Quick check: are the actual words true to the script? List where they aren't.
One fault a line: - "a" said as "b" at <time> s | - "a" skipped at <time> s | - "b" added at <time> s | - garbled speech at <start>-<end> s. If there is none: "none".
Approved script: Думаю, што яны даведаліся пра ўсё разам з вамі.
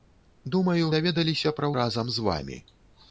- "што яны" skipped at 0.9 s
- "ўсё" skipped at 1.7 s